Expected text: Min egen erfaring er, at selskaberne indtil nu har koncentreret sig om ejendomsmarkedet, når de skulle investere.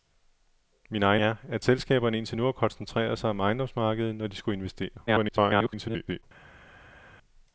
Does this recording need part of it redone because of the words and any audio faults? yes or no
yes